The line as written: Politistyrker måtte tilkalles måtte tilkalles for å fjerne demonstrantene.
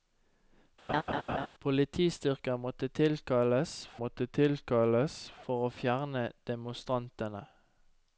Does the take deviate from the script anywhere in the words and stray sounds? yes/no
yes